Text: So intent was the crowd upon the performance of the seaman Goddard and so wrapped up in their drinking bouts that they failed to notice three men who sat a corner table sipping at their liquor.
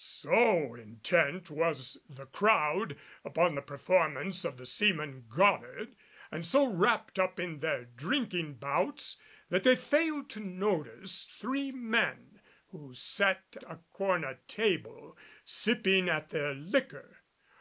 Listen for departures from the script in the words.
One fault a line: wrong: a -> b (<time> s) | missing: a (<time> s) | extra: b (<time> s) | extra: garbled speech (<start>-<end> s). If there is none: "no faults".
no faults